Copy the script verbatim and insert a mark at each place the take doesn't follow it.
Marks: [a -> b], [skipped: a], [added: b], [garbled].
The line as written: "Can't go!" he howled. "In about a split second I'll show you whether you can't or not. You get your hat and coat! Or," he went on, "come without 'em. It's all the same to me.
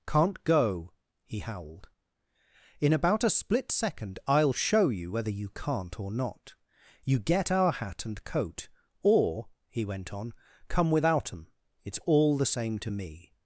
"Can't go!" he howled. "In about a split second I'll show you whether you can't or not. You get [your -> our] hat and coat! Or," he went on, "come without 'em. It's all the same to me.